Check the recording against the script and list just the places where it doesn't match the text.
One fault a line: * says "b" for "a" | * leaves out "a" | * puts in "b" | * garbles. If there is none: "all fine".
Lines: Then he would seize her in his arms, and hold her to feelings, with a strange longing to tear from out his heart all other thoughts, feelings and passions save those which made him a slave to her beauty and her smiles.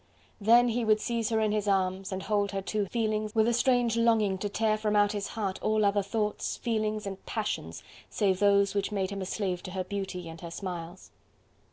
all fine